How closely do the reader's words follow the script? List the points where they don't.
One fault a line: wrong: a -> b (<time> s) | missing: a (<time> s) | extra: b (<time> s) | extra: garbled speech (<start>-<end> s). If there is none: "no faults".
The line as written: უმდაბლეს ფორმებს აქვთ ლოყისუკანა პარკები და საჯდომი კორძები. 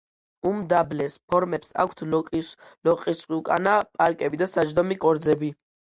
no faults